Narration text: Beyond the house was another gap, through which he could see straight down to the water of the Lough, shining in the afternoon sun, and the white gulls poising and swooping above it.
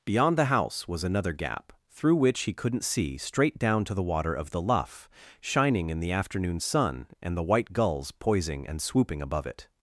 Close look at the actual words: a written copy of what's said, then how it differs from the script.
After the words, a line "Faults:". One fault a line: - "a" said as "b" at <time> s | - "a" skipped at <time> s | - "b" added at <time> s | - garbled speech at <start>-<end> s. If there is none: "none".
Beyond the house was another gap, through which he couldn't see straight down to the water of the Lough, shining in the afternoon sun, and the white gulls poising and swooping above it.
Faults:
- "could" said as "couldn't" at 2.5 s